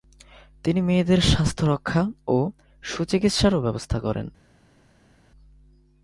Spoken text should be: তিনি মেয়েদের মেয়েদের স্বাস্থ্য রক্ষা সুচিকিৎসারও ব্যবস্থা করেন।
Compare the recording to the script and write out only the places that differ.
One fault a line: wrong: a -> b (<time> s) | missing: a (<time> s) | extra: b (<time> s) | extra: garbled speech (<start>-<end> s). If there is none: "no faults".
missing: মেয়েদের (1.2 s)
extra: ও (2.3 s)